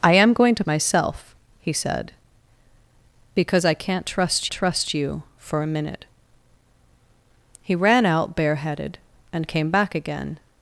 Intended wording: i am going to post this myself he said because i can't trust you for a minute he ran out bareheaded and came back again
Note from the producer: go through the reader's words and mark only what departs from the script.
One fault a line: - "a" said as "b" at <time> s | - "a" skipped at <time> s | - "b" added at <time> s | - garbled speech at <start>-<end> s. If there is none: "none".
- "post this" skipped at 0.6 s
- "trust" added at 4.5 s